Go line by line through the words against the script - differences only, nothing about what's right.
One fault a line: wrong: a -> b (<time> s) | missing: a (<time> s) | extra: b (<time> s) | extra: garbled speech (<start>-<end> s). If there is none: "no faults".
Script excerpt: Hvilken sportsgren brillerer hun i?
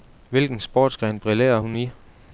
no faults